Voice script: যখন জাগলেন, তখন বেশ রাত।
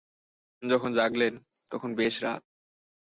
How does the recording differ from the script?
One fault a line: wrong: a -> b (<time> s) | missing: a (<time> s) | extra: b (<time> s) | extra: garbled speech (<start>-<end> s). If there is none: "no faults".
no faults